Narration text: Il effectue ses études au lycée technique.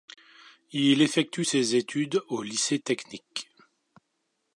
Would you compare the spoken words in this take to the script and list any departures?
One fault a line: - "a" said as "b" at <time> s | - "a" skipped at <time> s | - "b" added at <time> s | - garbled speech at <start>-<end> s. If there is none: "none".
none